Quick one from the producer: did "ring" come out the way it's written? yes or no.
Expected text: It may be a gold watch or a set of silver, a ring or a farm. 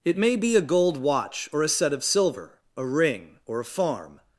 yes